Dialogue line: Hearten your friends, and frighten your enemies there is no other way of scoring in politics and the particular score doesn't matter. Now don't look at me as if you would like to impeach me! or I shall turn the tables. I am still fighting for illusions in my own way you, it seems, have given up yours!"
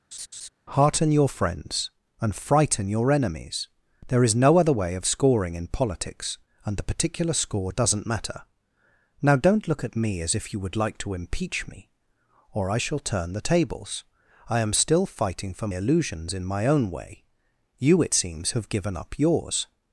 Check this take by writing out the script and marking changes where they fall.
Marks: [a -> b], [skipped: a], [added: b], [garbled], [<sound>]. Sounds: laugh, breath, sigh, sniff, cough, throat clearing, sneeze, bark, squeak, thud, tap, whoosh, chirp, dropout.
[laugh] Hearten your friends, and frighten your enemies there is no other way of scoring in politics and the particular score doesn't matter. Now don't look at me as if you would like to impeach me! or I shall turn the tables. I am still fighting for illusions in my own way you, it seems, have given up yours!"